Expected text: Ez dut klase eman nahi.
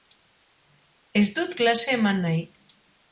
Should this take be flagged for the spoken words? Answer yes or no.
no